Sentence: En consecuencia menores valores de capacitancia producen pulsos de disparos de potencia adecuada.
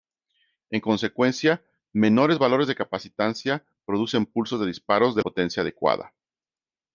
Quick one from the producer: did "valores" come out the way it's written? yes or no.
yes